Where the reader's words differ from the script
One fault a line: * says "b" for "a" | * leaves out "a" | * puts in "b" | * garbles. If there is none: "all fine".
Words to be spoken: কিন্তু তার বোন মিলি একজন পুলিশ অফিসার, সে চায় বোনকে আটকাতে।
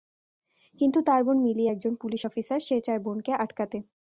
all fine